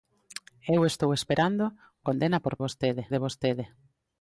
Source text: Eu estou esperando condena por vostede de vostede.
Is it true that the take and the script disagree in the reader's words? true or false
false